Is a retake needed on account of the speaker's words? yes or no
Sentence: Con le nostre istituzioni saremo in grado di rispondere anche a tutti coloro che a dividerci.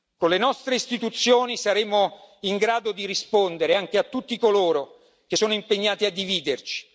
yes